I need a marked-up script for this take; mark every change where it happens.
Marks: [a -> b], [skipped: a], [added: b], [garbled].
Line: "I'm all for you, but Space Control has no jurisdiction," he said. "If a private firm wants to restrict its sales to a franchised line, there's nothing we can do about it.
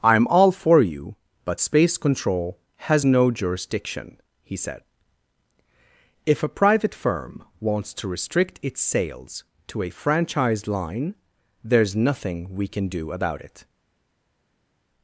"I'm all for you, but Space Control has no jurisdiction," he said. "If a private firm wants to restrict its sales to a franchised line, there's nothing we can do about it.